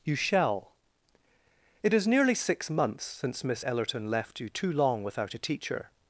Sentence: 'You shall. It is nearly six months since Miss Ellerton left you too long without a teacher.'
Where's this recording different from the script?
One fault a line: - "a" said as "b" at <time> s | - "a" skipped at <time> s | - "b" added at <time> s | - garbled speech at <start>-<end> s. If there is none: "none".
none